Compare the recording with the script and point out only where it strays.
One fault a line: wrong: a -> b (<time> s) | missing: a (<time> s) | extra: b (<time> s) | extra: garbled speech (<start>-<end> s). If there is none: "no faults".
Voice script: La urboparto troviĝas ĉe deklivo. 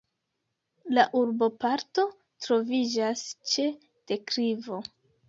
no faults